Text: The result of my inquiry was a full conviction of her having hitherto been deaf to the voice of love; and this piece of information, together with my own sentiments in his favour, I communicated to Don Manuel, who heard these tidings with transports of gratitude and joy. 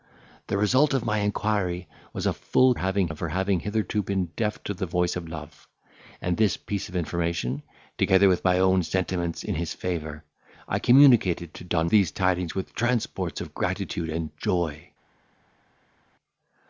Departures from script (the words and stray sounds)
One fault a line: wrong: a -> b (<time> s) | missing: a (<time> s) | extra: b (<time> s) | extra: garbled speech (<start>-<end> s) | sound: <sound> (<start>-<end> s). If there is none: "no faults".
wrong: conviction -> having (2.8 s)
missing: Manuel who heard (11.9 s)